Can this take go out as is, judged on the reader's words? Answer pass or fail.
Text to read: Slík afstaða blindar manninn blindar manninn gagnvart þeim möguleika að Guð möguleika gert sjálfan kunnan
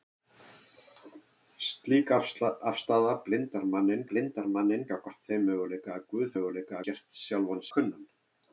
pass